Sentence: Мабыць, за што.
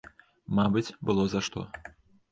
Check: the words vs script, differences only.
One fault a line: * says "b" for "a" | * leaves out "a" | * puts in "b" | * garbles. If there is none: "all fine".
* puts in "было"